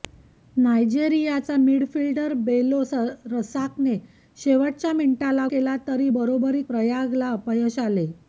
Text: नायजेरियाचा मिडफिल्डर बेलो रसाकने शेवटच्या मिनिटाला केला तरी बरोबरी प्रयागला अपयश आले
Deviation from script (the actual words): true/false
false